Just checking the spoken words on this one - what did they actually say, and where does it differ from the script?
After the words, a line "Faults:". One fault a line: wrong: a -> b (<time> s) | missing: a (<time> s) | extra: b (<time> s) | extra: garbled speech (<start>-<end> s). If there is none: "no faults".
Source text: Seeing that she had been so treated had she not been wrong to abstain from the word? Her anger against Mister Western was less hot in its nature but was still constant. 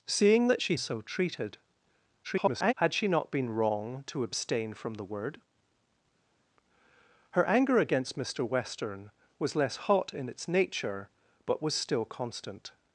Seeing that she so treated [garbled] had she not been wrong to abstain from the word? Her anger against Mister Western was less hot in its nature but was still constant.
Faults:
missing: had been (0.8 s)
extra: garbled speech (2.2-2.7 s)